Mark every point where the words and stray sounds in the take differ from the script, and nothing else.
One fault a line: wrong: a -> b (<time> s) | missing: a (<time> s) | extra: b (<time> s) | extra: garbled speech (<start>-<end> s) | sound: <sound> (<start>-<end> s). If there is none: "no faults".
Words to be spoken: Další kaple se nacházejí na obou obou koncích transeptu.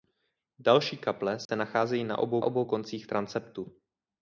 sound: dropout (1.5-1.5 s)